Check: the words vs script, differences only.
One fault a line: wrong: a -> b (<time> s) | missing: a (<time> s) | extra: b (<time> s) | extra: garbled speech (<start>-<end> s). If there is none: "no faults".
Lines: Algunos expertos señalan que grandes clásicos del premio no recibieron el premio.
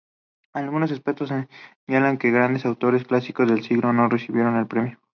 extra: autores (2.6 s)
wrong: premio -> siglo (3.6 s)